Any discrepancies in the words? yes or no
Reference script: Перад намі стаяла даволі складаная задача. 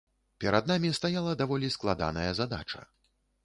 no